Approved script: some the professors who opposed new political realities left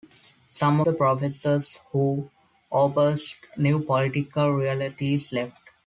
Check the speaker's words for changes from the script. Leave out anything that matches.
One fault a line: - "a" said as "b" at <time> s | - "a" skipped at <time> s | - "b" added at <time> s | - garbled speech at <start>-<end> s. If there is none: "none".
none